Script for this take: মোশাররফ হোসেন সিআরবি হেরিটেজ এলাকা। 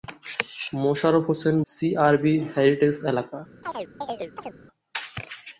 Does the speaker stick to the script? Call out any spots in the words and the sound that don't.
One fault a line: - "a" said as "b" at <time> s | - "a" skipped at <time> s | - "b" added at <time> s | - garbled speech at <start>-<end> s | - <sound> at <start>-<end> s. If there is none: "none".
- chirp at 3.6-4.5 s